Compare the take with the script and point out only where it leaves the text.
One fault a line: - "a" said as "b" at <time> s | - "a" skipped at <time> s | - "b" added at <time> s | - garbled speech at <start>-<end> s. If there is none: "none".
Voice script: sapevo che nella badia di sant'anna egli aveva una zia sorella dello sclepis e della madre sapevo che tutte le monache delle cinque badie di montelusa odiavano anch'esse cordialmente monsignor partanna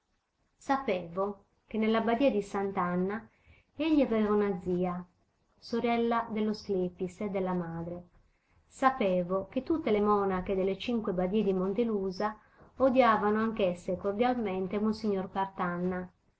none